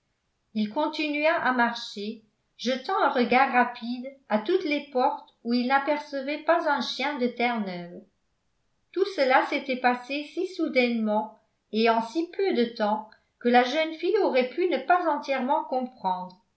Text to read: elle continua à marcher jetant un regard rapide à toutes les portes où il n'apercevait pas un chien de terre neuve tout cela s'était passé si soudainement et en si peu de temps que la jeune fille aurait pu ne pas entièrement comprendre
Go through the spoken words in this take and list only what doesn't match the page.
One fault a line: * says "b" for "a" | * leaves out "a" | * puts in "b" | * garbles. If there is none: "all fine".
* says "il" for "elle"